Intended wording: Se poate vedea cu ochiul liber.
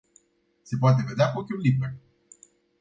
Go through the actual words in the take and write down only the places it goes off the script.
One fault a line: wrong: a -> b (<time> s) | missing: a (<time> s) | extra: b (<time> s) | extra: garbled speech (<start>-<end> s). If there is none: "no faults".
no faults